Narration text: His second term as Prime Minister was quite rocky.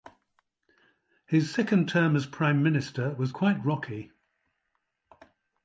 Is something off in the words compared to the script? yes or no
no